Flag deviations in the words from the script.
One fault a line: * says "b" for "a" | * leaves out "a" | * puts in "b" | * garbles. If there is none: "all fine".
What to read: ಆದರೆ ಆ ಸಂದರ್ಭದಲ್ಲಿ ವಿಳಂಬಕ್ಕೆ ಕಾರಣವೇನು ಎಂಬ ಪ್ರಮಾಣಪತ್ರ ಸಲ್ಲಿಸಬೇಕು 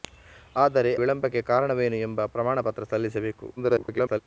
* leaves out "ಆ ಸಂದರ್ಭದಲ್ಲಿ"
* garbles